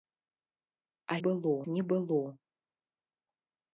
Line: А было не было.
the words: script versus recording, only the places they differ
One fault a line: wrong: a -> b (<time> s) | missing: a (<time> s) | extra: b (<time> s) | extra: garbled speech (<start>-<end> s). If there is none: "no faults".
no faults